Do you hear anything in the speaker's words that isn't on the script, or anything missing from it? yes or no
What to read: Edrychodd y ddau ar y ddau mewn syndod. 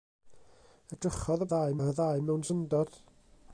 no